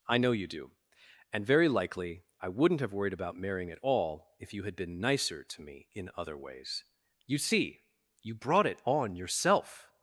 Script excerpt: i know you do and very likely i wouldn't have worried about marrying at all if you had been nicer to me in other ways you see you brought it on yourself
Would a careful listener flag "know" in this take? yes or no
no